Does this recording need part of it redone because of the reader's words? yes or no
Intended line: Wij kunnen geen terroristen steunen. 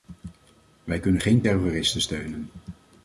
no